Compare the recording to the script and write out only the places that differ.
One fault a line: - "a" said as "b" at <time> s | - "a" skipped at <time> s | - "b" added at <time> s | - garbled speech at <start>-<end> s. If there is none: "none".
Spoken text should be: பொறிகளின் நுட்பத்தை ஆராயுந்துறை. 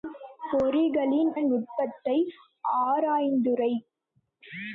none